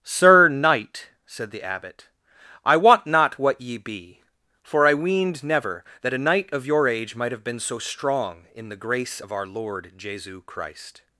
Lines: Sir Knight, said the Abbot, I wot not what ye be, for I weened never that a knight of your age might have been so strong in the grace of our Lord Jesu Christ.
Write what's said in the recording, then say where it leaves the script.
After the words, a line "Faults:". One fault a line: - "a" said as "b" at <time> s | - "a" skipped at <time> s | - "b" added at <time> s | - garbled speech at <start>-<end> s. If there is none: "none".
Sir Knight, said the Abbot, I wot not what ye be, for I weened never that a knight of your age might have been so strong in the grace of our Lord Jesu Christ.
Faults:
none